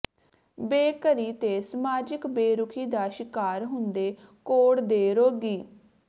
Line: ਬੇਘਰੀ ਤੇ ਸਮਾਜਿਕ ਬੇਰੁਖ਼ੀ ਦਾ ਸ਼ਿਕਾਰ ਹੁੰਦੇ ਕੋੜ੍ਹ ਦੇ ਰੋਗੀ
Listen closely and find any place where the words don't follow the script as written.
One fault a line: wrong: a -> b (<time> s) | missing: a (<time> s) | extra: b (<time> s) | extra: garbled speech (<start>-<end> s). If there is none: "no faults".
no faults